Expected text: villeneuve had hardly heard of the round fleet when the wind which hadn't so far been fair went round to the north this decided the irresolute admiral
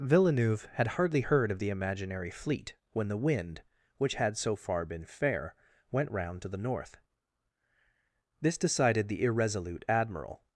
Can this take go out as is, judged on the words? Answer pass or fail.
fail